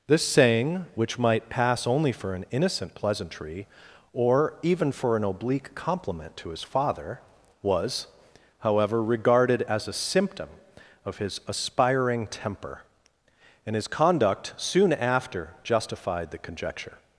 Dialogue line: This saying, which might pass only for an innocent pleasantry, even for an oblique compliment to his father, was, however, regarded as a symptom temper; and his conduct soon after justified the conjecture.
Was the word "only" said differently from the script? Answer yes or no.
no